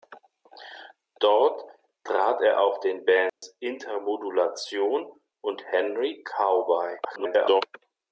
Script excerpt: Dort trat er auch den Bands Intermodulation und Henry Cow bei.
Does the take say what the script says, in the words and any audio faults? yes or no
no